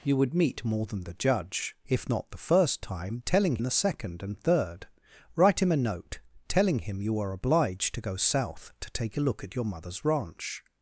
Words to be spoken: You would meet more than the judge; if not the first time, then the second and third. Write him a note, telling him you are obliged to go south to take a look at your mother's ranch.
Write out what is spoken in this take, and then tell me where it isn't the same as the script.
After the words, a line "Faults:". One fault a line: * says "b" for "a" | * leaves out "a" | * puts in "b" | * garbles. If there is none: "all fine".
You would meet more than the judge; if not the first time, telling the second and third. Write him a note, telling him you are obliged to go south to take a look at your mother's ranch.
Faults:
* says "telling" for "then"